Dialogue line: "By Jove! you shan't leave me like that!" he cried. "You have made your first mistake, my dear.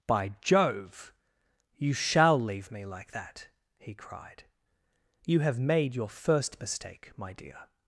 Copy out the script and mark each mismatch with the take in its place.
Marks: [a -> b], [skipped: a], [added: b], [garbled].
"By Jove! you [shan't -> shall] leave me like that!" he cried. "You have made your first mistake, my dear.